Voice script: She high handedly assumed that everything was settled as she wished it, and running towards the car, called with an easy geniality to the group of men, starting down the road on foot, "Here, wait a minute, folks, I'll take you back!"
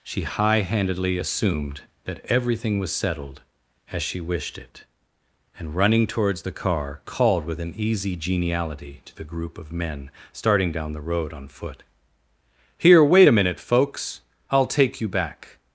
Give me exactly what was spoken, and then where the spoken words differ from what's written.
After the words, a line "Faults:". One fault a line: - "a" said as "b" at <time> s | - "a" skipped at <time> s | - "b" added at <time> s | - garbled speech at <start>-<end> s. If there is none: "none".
She high handedly assumed that everything was settled as she wished it, and running towards the car, called with an easy geniality to the group of men, starting down the road on foot, "Here, wait a minute, folks, I'll take you back!"
Faults:
none